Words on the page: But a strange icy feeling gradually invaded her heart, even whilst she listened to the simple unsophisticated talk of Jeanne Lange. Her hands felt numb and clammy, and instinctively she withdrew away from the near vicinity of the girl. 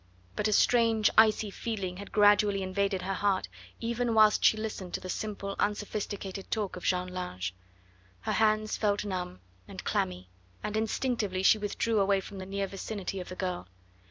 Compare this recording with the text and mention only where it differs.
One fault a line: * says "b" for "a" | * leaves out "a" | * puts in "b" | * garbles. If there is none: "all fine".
* puts in "had"